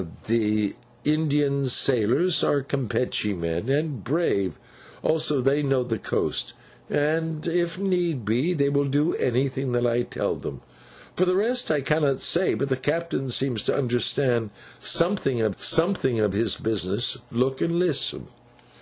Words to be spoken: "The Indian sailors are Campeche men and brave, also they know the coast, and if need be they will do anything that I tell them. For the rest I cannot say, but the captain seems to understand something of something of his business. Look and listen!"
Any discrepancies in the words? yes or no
no